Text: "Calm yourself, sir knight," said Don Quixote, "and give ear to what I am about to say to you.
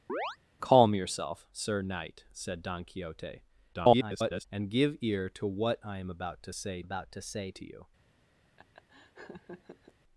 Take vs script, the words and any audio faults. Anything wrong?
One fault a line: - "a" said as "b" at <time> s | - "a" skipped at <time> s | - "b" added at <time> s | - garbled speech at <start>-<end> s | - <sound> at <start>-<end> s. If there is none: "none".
- chirp at 0.1-0.4 s
- garbled speech at 3.7-4.5 s
- "about to say" added at 6.8 s
- laugh at 8.6-9.9 s